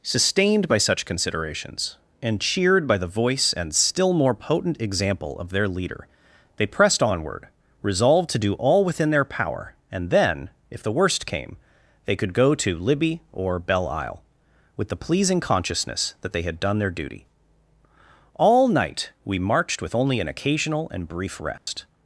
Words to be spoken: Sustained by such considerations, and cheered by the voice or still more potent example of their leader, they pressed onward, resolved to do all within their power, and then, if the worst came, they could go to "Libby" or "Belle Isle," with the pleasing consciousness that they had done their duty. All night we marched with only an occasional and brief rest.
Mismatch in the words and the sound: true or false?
true